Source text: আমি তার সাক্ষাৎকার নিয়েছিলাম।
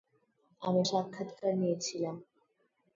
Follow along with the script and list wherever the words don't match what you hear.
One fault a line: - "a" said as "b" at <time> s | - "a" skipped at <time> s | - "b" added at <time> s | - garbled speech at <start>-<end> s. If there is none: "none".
- "তার" skipped at 0.8 s